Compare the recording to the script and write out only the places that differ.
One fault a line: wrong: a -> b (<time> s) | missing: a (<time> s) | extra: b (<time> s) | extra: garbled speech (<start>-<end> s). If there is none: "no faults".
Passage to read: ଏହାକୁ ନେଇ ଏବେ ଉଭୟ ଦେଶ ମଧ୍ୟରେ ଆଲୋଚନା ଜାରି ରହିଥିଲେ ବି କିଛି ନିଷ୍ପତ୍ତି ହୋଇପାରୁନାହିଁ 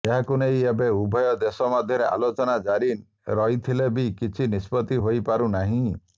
no faults